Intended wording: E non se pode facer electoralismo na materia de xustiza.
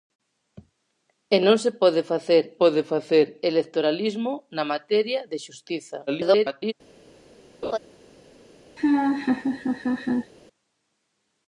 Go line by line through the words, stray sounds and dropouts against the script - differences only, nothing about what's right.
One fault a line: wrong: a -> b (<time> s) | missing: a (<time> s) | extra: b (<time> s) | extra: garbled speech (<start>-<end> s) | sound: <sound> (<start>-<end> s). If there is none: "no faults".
extra: pode facer (2.6 s)
extra: garbled speech (6.1-6.7 s)
sound: laugh (7.6-7.8 s)
sound: laugh (8.8-10.3 s)